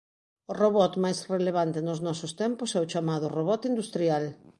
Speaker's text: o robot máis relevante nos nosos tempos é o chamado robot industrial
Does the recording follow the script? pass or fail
pass